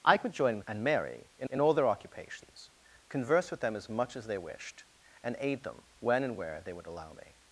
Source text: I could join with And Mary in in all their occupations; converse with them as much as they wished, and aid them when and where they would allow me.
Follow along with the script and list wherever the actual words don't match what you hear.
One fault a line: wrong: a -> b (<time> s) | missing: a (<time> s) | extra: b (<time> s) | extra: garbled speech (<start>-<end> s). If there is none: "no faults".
no faults